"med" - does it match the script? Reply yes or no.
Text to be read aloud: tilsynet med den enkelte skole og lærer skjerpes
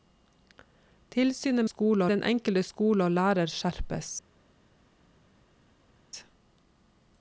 no